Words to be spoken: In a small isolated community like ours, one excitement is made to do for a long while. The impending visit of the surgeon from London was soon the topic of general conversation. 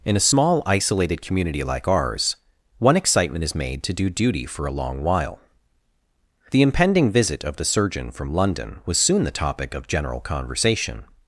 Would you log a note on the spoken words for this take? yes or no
yes